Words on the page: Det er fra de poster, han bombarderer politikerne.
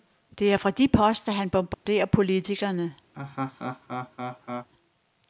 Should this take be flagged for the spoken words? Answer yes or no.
no